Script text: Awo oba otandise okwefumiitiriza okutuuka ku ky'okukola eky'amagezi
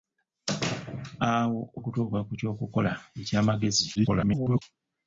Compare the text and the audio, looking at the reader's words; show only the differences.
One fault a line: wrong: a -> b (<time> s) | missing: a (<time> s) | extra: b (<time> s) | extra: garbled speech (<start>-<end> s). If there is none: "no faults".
missing: oba otandise okwefumiitiriza (1.6 s)
extra: garbled speech (4.0-4.6 s)